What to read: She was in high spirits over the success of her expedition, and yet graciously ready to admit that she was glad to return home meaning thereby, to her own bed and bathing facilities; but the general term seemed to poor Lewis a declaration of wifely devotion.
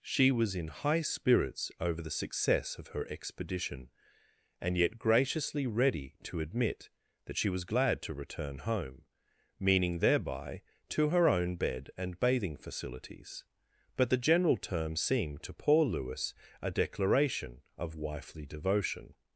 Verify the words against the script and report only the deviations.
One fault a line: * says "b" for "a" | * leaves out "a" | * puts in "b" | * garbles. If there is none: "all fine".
all fine